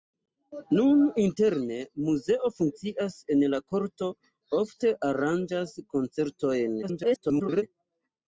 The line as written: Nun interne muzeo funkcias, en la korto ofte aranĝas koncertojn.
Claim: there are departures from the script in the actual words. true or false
true